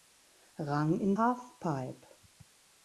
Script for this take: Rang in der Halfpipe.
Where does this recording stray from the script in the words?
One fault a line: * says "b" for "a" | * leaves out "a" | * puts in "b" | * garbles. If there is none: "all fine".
* leaves out "der"